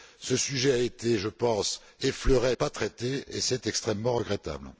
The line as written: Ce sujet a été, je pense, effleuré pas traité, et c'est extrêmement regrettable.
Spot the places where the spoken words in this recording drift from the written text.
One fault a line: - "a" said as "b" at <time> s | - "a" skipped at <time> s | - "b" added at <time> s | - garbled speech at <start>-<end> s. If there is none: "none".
none